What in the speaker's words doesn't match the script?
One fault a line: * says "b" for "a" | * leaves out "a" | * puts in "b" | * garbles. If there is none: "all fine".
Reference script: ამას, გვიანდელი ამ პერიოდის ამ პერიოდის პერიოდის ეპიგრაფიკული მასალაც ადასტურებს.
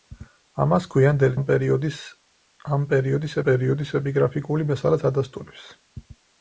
all fine